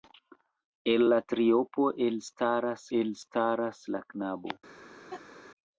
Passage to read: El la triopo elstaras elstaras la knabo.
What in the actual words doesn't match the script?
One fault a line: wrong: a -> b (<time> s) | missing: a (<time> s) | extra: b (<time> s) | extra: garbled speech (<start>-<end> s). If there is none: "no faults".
no faults